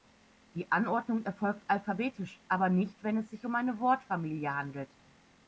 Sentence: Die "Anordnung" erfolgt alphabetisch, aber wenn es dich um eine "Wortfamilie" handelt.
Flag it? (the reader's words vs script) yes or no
yes